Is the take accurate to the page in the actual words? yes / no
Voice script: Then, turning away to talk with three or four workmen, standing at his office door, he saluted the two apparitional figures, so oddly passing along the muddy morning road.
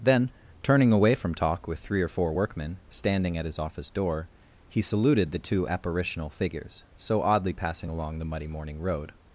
no